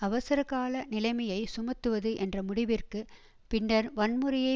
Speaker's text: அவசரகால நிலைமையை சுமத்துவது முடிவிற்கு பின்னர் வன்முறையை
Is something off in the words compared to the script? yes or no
yes